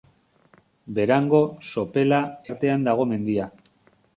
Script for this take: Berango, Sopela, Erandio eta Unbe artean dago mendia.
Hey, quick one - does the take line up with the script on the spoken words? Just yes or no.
no